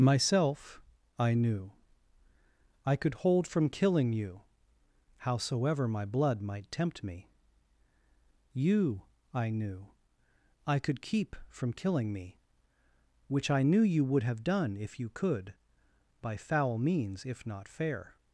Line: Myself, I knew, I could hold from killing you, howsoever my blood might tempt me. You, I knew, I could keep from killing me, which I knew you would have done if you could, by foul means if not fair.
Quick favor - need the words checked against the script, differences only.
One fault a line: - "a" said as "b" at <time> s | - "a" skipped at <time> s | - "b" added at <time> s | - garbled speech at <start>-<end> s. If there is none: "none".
none